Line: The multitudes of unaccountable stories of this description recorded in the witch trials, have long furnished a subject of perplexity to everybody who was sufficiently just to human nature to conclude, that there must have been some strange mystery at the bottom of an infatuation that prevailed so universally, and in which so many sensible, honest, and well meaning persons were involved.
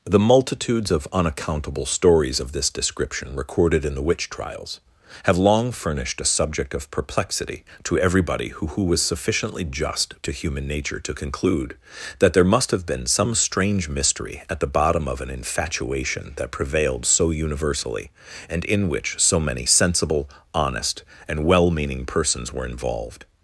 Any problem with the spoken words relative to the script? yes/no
yes